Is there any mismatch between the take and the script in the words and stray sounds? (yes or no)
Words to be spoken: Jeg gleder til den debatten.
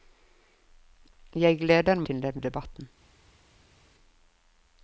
no